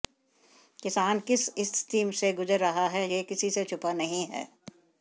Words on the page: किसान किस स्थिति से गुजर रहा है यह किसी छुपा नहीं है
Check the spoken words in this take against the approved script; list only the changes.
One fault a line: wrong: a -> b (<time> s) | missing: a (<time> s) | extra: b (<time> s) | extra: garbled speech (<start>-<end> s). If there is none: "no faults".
extra: से (3.5 s)